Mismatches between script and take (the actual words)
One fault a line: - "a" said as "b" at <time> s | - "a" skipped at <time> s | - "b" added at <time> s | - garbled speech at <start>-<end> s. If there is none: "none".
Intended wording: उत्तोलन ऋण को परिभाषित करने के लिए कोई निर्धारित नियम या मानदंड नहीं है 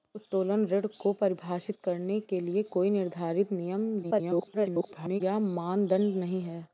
- garbled speech at 4.0-5.2 s